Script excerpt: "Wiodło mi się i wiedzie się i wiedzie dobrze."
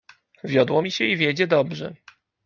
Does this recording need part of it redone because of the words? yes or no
yes